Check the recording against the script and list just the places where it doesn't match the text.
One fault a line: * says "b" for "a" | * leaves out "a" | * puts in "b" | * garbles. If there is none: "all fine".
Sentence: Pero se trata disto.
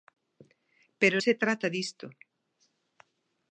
all fine